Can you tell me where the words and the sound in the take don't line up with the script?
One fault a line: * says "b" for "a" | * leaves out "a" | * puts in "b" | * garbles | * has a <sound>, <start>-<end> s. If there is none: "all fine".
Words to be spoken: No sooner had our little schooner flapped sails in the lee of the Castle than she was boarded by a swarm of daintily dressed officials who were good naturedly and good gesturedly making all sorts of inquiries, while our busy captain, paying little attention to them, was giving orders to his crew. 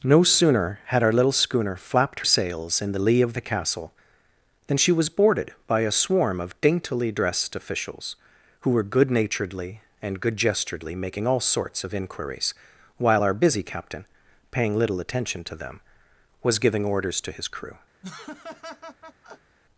* has a laugh, 18.0-19.6 s